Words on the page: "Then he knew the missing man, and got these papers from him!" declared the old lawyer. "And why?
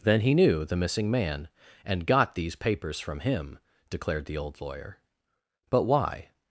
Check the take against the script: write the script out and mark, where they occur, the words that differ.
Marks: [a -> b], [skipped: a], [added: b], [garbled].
"Then he knew the missing man, and got these papers from him!" declared the old lawyer. ["And -> But] why?